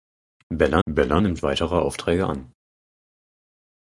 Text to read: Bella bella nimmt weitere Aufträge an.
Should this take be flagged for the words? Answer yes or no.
no